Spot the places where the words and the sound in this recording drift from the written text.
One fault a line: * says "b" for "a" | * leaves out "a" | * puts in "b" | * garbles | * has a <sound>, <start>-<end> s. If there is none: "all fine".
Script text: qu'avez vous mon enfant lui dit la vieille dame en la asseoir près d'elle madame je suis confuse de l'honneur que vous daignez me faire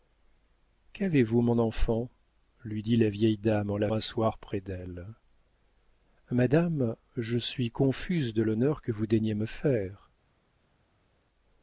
all fine